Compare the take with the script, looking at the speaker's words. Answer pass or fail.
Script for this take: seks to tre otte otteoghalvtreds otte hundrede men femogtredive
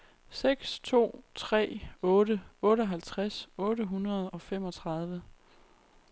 fail